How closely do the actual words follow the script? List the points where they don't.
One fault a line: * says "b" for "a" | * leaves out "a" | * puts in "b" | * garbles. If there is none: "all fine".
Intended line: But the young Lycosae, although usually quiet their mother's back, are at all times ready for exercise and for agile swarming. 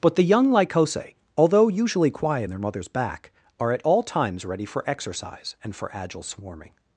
all fine